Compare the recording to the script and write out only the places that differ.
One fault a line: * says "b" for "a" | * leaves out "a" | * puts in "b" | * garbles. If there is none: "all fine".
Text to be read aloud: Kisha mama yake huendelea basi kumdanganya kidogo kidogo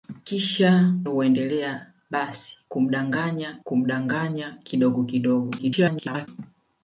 * leaves out "mama yake"
* puts in "kumdanganya"
* garbles